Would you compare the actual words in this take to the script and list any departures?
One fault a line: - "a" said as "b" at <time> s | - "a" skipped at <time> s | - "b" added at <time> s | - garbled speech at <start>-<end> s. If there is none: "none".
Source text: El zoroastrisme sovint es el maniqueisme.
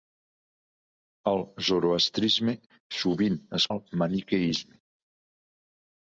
none